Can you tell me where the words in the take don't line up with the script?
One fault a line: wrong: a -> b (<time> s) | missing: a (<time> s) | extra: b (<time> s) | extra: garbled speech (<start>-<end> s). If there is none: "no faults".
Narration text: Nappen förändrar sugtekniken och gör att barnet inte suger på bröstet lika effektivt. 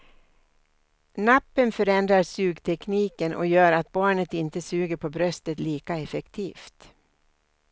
no faults